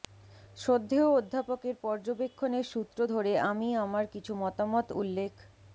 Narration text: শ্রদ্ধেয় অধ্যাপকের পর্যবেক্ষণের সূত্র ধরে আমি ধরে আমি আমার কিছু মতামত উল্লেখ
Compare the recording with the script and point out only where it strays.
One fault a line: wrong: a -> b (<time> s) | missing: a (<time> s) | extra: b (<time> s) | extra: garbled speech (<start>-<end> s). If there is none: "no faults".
missing: ধরে আমি (3.7 s)